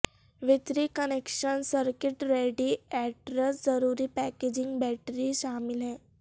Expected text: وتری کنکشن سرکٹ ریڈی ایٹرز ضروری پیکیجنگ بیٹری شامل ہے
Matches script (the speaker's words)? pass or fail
pass